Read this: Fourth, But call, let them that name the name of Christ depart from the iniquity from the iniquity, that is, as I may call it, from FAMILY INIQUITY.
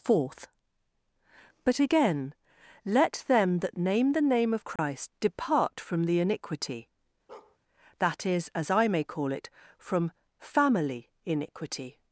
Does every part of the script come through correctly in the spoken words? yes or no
no